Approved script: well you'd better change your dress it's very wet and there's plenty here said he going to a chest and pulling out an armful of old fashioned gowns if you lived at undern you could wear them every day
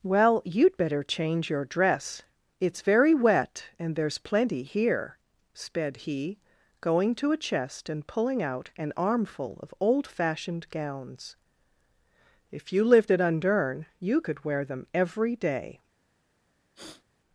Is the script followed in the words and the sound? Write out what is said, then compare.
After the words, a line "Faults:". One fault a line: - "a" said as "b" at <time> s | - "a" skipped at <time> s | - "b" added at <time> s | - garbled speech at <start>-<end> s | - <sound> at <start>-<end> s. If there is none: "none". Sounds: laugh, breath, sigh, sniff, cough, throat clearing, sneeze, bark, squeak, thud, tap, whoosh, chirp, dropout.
well you'd better change your dress it's very wet and there's plenty here sped he going to a chest and pulling out an armful of old fashioned gowns if you lived at undern you could wear them every day
Faults:
- "said" said as "sped" at 5.5 s
- sniff at 16.7-17.0 s